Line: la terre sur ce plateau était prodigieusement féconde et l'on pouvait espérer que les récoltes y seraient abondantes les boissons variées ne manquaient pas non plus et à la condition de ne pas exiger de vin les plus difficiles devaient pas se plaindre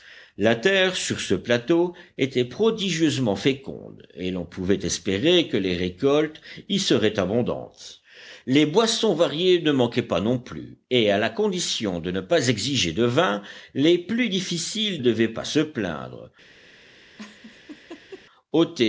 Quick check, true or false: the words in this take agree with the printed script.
true